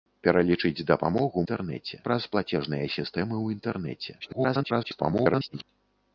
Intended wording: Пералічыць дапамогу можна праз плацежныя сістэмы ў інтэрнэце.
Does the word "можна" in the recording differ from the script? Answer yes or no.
yes